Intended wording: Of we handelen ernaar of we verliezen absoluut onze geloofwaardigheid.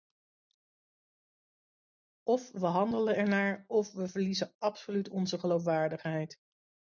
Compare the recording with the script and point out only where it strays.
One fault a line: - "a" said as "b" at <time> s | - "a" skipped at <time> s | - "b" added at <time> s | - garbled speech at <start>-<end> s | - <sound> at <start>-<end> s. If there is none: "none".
none